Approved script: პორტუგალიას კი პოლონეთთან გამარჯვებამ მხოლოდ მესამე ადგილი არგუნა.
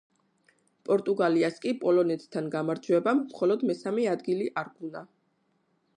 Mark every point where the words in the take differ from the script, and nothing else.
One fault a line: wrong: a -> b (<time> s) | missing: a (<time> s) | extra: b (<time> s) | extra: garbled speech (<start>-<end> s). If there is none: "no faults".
no faults